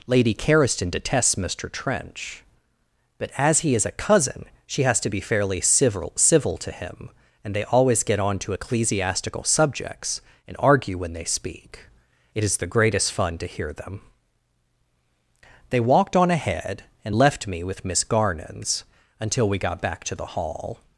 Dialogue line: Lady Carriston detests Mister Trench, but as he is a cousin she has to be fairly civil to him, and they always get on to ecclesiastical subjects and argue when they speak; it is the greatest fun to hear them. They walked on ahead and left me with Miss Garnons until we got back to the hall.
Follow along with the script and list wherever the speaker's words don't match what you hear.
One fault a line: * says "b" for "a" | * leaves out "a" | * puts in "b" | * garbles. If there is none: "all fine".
* puts in "civil"